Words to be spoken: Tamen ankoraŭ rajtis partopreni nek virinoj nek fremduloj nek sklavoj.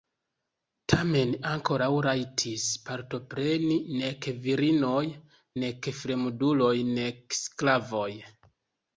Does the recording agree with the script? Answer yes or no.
yes